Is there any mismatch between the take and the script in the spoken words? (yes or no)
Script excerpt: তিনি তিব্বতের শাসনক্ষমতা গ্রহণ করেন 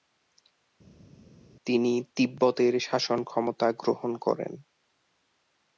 no